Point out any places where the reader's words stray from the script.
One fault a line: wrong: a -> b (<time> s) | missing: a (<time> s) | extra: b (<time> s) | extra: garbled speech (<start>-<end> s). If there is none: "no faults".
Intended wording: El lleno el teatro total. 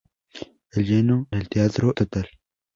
no faults